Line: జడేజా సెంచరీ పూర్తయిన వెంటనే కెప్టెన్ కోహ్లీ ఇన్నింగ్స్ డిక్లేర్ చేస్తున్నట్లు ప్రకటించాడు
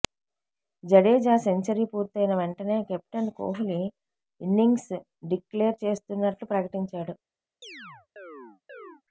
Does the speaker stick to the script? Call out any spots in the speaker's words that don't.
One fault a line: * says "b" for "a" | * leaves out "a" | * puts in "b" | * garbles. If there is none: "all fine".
all fine